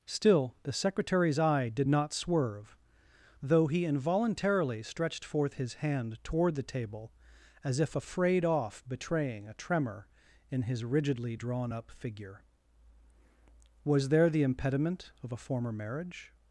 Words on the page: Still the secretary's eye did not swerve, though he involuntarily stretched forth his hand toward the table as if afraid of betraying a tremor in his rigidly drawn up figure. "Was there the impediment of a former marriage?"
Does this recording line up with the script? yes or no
no